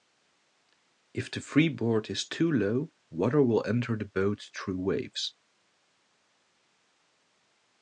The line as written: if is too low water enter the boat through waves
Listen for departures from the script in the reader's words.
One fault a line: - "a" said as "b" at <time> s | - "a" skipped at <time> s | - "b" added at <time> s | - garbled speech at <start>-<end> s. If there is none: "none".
- "the freeboard" added at 1.3 s
- "will" added at 3.4 s